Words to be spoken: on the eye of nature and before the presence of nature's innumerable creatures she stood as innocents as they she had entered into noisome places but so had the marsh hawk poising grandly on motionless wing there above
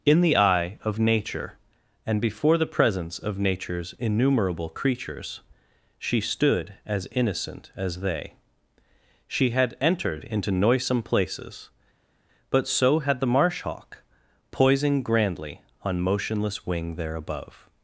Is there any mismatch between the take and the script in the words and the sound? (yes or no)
yes